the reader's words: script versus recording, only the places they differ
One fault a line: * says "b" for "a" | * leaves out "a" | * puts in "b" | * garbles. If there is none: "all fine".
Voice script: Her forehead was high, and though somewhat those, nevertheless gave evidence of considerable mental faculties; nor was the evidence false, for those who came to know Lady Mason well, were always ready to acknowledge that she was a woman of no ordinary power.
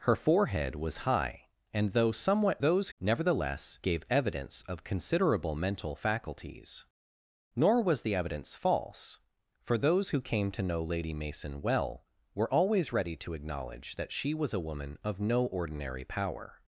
all fine